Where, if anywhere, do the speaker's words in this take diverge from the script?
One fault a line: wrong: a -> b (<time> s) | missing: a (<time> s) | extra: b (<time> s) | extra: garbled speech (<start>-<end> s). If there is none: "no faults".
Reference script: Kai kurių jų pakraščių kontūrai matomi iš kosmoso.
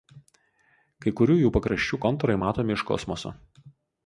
no faults